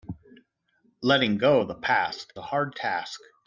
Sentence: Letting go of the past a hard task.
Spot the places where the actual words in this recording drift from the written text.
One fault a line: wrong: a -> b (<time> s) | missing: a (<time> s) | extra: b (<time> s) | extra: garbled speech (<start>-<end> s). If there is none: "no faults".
no faults